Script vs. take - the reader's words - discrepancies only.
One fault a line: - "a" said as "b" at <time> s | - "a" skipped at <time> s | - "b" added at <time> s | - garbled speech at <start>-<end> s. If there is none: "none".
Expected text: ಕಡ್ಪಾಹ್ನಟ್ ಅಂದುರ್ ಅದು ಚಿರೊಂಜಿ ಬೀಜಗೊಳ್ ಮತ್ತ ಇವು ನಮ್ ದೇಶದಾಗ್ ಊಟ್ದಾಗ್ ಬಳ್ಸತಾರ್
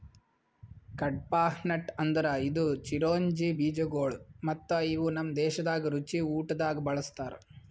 - "ಅದು" said as "ಇದು" at 2.4 s
- "ರುಚಿ" added at 6.0 s